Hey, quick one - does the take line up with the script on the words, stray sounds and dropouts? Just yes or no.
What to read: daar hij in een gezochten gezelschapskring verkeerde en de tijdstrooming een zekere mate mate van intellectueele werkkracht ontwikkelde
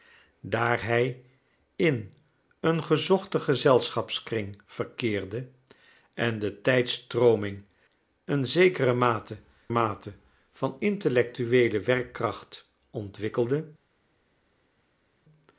yes